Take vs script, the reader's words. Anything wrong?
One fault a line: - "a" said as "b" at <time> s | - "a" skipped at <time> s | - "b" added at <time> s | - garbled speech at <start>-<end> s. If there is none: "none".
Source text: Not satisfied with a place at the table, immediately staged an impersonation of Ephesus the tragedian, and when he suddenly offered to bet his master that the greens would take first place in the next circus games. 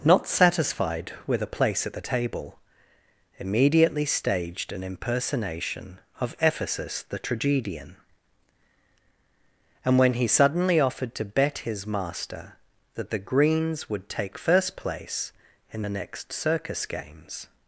none